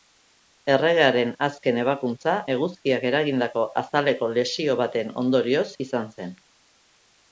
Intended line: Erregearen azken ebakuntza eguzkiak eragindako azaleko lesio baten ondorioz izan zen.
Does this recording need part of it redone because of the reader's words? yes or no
no